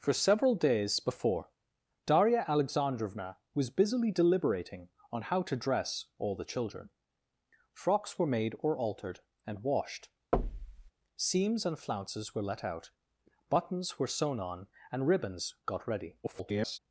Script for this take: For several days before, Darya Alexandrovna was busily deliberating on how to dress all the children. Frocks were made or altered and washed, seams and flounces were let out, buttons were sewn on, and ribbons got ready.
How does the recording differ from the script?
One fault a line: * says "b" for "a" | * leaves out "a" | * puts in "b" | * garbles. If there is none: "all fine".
* garbles